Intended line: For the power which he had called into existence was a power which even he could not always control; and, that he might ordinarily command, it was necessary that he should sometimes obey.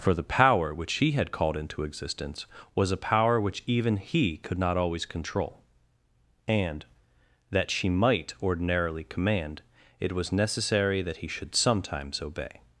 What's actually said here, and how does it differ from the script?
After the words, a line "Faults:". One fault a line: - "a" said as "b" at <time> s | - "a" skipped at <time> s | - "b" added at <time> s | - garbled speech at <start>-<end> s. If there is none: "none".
For the power which he had called into existence was a power which even he could not always control; and, that she might ordinarily command, it was necessary that he should sometimes obey.
Faults:
- "he" said as "she" at 7.7 s